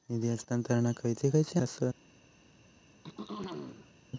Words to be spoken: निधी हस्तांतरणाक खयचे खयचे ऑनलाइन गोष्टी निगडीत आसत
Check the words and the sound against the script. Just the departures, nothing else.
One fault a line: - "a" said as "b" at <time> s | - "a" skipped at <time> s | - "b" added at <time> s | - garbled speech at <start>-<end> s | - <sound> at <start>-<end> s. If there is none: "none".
- "ऑनलाइन गोष्टी निगडीत" skipped at 1.6 s
- throat clearing at 3.0-3.9 s